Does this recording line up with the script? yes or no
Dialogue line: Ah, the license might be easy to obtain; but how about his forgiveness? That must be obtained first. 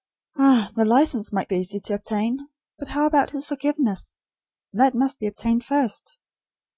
yes